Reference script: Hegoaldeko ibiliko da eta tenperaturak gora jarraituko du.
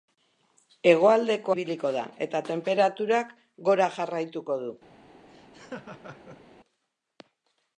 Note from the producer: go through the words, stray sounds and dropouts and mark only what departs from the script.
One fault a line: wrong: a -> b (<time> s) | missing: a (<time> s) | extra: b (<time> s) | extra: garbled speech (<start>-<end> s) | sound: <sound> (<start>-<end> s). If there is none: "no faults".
sound: laugh (5.3-6.4 s)